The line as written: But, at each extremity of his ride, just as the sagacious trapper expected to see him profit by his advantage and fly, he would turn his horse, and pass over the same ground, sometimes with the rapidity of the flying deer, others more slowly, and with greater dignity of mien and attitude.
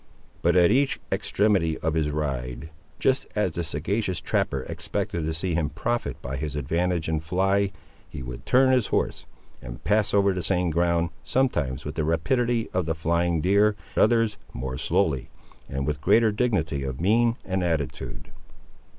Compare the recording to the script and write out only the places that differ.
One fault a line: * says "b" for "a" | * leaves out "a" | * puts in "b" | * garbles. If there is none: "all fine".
all fine